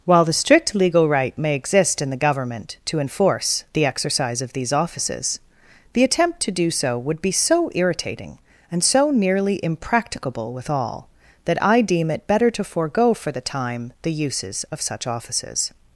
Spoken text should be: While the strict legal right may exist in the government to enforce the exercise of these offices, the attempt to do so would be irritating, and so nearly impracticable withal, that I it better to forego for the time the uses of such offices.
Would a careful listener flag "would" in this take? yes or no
no